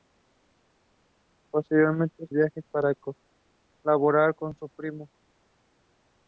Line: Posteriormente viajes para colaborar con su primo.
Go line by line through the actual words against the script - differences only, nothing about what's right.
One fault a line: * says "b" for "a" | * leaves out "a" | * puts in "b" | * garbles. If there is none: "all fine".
all fine